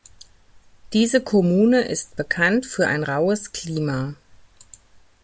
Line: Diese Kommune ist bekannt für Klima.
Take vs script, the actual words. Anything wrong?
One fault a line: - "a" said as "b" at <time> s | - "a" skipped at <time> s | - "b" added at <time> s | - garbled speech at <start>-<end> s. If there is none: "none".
- "ein raues" added at 2.9 s